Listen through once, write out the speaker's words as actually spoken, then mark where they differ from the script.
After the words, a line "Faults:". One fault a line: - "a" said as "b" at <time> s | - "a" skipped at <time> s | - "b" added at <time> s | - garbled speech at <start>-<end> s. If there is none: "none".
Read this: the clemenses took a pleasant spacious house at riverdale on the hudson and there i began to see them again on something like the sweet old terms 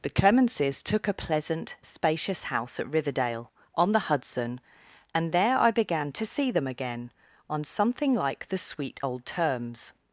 the clemenses took a pleasant spacious house at riverdale on the hudson and there i began to see them again on something like the sweet old terms
Faults:
none